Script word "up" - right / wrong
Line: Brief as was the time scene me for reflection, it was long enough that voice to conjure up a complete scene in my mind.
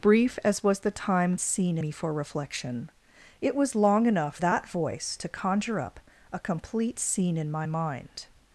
right